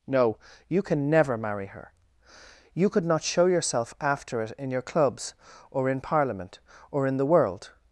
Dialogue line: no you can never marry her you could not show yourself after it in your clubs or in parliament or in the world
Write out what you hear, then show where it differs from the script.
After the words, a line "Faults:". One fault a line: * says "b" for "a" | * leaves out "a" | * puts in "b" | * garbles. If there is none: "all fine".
no you can never marry her you could not show yourself after it in your clubs or in parliament or in the world
Faults:
all fine